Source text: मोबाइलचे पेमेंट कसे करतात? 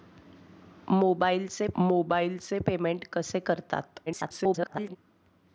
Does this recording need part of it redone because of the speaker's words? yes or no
yes